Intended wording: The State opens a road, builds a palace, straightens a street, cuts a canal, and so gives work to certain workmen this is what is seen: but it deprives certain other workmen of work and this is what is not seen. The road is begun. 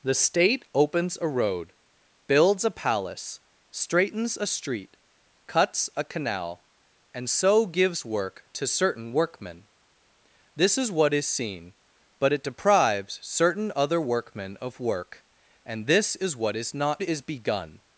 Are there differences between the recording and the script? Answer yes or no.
yes